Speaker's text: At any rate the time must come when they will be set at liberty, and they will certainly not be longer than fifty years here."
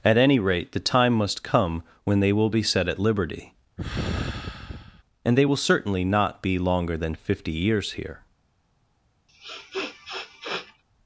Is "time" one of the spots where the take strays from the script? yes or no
no